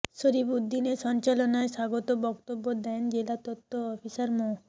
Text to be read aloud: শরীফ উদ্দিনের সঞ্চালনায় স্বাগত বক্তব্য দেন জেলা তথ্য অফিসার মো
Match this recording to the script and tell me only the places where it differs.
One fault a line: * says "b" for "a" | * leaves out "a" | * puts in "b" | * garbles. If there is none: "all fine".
all fine